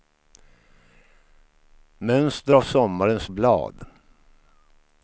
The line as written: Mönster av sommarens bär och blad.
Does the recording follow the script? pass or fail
fail